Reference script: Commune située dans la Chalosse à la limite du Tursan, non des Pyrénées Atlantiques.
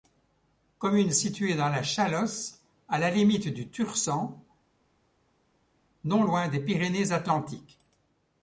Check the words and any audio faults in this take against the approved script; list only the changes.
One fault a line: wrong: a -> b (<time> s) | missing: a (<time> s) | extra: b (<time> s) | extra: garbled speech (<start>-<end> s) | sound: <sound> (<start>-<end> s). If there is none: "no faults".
extra: loin (6.2 s)